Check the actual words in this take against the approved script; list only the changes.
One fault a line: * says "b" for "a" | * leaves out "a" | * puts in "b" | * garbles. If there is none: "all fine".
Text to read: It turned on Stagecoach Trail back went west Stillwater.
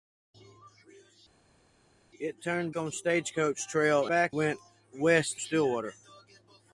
all fine